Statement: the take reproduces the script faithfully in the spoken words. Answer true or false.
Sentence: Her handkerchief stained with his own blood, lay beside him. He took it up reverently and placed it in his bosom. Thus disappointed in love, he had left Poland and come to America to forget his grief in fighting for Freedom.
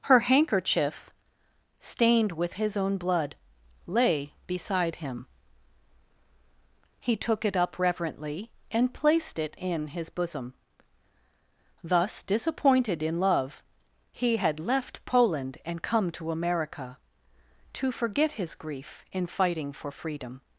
true